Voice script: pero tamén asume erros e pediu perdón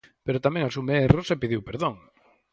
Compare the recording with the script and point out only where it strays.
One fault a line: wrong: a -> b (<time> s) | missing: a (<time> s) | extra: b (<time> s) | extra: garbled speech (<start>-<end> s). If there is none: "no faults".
no faults